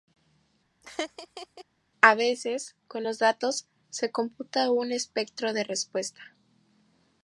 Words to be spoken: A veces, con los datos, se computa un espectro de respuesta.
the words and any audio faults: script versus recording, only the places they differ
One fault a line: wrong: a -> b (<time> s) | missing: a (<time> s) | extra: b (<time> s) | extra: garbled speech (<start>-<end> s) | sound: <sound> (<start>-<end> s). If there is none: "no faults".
sound: laugh (0.8-1.6 s)